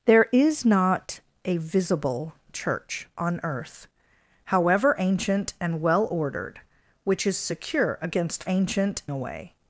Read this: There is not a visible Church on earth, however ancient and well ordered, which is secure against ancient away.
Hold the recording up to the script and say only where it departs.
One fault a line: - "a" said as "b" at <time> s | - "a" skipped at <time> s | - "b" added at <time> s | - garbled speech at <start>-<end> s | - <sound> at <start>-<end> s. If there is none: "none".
none